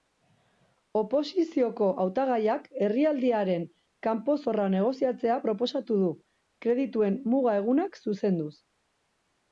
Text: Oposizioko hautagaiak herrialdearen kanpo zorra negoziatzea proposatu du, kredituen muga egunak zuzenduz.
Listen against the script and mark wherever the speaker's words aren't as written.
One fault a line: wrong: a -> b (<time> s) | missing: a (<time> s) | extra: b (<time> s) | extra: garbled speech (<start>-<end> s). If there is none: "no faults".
no faults